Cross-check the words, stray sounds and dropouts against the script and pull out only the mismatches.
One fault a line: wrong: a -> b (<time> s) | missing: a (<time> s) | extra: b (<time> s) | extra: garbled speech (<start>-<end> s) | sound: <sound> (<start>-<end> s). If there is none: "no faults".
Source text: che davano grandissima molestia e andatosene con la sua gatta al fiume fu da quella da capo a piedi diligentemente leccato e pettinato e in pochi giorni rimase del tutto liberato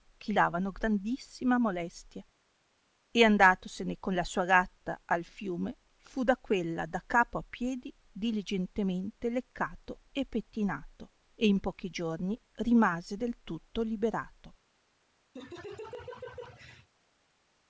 sound: laugh (15.3-16.9 s)